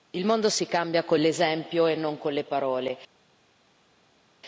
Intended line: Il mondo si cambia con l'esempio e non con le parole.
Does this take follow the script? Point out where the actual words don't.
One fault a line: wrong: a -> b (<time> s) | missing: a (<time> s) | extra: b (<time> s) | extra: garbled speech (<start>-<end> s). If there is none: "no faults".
no faults